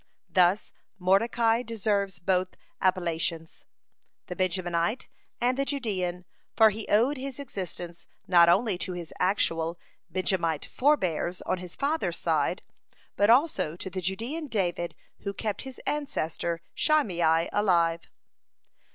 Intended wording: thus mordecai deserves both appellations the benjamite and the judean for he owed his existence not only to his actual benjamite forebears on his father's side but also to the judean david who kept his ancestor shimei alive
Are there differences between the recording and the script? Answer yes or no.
no